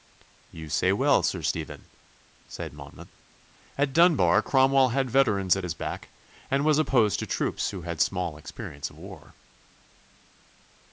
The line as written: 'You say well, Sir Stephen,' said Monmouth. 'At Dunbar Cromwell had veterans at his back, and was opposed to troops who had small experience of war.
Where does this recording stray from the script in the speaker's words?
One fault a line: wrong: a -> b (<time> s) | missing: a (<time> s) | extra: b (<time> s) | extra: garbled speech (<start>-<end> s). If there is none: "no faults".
no faults